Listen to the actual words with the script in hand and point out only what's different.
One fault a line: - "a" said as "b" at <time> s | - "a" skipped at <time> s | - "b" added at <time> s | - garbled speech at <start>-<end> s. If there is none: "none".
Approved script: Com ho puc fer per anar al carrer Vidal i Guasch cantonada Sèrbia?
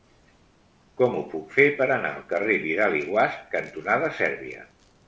none